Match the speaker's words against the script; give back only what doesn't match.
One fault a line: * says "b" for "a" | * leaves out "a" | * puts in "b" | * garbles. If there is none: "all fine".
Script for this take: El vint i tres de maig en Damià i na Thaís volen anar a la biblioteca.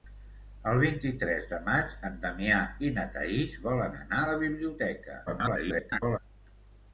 * garbles